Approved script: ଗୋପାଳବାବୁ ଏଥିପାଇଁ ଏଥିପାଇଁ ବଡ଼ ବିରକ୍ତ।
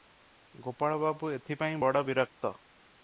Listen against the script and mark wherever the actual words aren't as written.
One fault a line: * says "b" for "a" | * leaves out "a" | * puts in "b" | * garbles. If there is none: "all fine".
* leaves out "ଏଥିପାଇଁ"